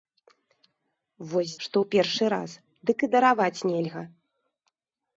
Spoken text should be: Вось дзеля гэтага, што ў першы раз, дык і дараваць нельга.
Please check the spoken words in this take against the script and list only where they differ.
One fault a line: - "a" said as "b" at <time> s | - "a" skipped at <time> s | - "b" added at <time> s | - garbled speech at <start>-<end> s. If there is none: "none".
- "дзеля гэтага" skipped at 1.5 s